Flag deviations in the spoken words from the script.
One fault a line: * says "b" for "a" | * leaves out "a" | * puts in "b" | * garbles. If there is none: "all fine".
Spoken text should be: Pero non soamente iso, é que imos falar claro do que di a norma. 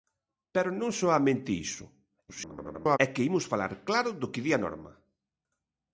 * garbles